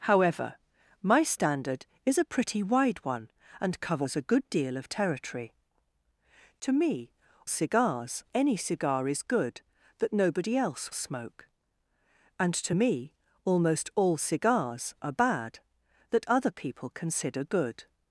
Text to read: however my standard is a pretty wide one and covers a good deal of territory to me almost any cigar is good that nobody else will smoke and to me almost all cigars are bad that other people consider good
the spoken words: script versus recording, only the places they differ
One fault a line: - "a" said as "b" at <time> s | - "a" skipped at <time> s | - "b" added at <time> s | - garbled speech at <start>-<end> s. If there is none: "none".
- "almost" said as "cigars" at 7.5 s
- "will" skipped at 10.9 s